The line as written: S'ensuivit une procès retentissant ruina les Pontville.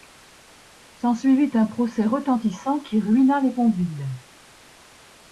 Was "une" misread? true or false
true